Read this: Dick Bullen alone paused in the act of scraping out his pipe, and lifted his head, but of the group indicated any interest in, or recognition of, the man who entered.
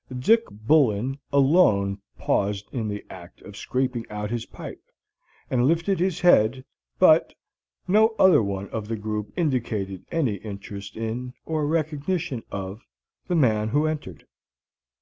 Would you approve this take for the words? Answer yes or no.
no